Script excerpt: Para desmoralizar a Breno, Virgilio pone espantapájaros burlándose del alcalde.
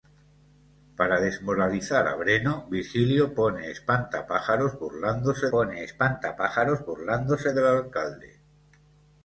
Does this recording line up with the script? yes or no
no